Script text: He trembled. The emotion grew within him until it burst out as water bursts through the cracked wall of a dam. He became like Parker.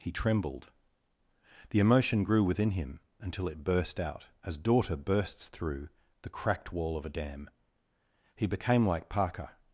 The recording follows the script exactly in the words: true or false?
false